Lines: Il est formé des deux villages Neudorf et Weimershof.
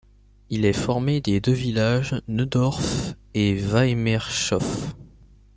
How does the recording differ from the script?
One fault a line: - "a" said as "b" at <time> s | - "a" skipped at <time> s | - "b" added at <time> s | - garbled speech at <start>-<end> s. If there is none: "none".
none